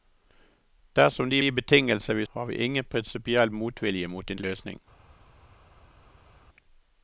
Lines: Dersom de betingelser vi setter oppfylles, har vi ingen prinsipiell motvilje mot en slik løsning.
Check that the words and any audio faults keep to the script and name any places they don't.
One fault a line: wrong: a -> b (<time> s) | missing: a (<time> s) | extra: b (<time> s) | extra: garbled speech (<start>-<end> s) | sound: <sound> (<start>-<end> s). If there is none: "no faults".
extra: de (1.4 s)
missing: setter oppfylles (2.2 s)
missing: slik (4.4 s)